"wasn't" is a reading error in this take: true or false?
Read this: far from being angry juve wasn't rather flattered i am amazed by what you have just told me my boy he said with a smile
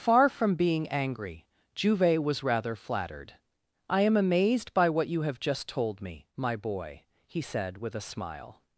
true